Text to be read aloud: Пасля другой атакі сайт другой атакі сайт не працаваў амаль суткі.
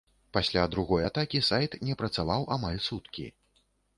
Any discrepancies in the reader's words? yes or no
yes